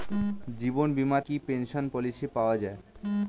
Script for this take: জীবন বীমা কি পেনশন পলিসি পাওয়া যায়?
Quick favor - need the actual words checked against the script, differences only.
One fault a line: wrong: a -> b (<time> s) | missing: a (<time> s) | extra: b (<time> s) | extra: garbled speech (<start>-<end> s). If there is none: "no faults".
no faults